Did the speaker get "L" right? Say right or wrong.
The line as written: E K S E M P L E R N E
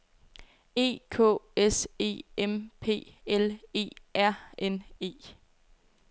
right